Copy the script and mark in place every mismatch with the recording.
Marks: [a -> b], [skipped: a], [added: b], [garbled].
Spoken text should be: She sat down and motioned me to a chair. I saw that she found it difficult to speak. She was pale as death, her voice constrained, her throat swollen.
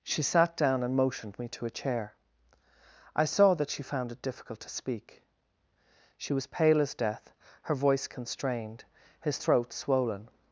She sat down and motioned me to a chair. I saw that she found it difficult to speak. She was pale as death, her voice constrained, [her -> his] throat swollen.